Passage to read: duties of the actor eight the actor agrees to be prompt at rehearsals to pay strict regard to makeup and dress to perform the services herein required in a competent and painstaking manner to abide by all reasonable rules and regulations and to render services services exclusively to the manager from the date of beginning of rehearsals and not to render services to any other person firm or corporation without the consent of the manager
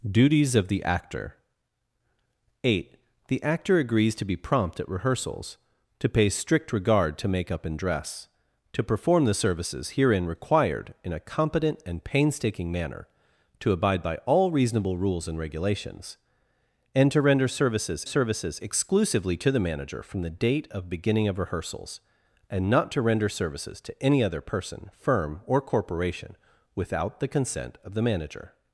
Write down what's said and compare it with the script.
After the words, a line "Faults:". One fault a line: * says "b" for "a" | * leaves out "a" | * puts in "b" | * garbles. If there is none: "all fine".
duties of the actor eight the actor agrees to be prompt at rehearsals to pay strict regard to makeup and dress to perform the services herein required in a competent and painstaking manner to abide by all reasonable rules and regulations and to render services services exclusively to the manager from the date of beginning of rehearsals and not to render services to any other person firm or corporation without the consent of the manager
Faults:
all fine